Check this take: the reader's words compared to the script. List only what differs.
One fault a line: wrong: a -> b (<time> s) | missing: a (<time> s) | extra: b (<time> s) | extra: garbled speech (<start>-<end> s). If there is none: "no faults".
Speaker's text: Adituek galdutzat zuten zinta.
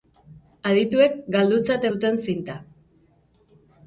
no faults